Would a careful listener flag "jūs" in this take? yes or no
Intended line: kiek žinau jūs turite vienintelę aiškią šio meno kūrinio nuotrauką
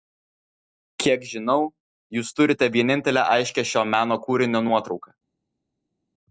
no